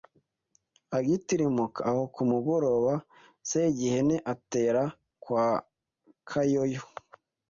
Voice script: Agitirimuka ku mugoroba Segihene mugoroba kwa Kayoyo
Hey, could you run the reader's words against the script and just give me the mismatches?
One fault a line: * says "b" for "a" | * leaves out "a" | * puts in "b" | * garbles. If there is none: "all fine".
* puts in "aho"
* says "atera" for "mugoroba"